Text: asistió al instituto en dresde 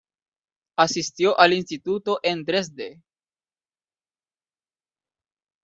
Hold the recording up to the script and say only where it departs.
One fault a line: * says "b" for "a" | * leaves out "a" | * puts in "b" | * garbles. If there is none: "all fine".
all fine